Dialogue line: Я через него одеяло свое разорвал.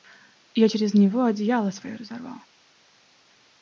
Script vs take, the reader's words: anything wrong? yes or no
no